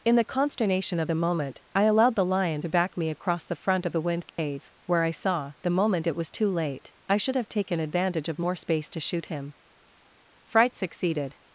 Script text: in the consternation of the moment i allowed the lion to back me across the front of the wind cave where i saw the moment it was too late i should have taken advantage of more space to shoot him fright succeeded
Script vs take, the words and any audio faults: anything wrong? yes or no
yes